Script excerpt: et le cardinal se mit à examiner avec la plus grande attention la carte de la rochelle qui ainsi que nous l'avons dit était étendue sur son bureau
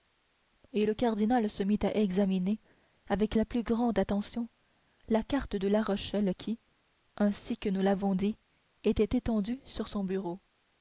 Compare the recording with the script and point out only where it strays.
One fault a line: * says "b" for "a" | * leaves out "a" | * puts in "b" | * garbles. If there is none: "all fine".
all fine